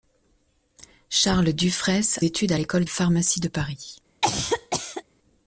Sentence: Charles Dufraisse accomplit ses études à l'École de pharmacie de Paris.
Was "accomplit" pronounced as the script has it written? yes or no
no